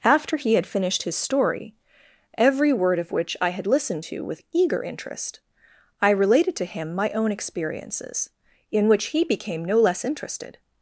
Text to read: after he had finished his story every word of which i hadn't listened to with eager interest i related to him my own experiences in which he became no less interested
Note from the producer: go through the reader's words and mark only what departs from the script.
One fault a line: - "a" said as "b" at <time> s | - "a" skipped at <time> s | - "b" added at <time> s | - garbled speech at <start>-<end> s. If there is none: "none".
- "hadn't" said as "had" at 3.5 s